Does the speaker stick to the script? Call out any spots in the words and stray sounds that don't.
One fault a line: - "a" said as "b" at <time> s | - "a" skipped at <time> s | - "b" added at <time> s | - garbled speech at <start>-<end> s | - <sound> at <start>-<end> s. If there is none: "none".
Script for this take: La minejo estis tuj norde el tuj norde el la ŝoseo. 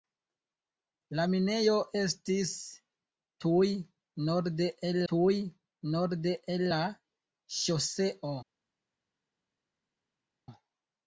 none